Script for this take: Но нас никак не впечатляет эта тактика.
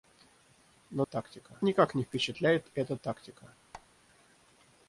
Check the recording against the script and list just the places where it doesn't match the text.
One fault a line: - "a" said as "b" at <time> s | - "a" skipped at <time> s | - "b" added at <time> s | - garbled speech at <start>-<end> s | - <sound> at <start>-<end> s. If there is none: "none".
- "нас" said as "тактика" at 1.0 s
- squeak at 3.7-3.9 s